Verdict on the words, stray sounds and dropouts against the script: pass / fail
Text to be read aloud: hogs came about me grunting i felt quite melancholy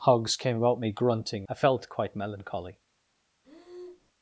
fail